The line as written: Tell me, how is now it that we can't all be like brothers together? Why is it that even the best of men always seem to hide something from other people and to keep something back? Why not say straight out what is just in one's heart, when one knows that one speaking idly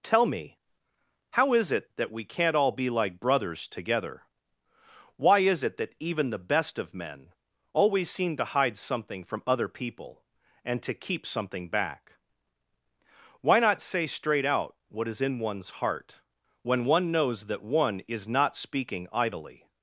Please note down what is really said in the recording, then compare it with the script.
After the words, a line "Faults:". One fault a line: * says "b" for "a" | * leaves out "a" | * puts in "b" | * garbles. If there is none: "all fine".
Tell me, how is it that we can't all be like brothers together? Why is it that even the best of men always seem to hide something from other people and to keep something back? Why not say straight out what is in one's heart, when one knows that one is not speaking idly
Faults:
* leaves out "now"
* leaves out "just"
* puts in "is not"